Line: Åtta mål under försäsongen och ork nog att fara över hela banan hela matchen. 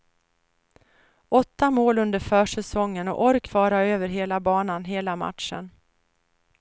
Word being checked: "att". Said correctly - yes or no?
no